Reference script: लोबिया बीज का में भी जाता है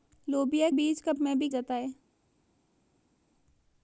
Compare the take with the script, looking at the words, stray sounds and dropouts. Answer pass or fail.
pass